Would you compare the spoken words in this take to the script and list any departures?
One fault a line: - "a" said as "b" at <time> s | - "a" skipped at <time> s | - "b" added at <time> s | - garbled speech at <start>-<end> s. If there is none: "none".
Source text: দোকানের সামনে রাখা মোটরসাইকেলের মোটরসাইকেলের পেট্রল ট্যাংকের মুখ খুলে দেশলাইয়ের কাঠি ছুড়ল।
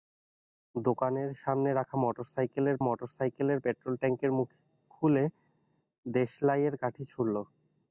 none